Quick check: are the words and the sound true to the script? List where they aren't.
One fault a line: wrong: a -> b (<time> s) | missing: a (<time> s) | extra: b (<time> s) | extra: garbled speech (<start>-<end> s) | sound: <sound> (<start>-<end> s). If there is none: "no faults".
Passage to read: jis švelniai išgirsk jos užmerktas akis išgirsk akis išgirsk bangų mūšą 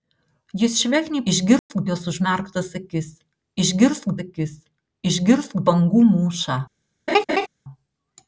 sound: dropout (1.6-1.7 s)
sound: laugh (7.1-7.5 s)